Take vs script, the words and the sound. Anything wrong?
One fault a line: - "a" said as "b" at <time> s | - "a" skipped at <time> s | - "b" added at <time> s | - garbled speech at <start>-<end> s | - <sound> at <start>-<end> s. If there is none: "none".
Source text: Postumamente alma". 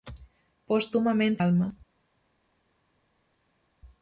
none